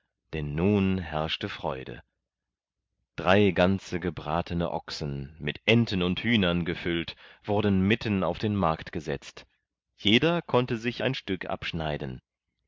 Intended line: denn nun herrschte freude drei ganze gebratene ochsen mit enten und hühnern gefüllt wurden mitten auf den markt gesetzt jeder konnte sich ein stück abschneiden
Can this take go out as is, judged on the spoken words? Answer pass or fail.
pass